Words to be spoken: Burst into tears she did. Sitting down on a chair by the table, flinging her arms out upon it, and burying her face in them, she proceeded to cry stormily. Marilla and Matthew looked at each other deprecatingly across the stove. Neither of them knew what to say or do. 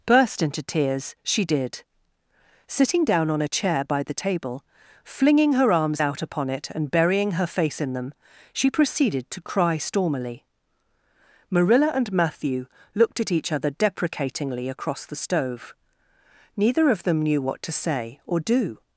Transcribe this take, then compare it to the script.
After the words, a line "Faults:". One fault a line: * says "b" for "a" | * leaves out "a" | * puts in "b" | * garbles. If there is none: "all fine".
Burst into tears she did. Sitting down on a chair by the table, flinging her arms out upon it, and burying her face in them, she proceeded to cry stormily. Marilla and Matthew looked at each other deprecatingly across the stove. Neither of them knew what to say or do.
Faults:
all fine